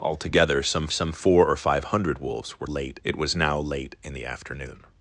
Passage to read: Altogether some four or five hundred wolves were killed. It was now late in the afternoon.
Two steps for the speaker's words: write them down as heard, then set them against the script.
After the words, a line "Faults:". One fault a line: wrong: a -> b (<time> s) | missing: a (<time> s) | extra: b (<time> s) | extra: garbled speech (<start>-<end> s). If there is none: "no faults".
Altogether some some four or five hundred wolves were late. It was now late in the afternoon.
Faults:
extra: some (0.9 s)
wrong: killed -> late (2.6 s)